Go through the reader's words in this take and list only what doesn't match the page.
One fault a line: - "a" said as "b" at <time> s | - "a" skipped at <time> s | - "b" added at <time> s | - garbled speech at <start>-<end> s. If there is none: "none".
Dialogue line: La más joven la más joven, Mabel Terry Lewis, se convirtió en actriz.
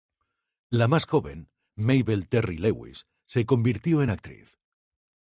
- "la más joven" skipped at 1.5 s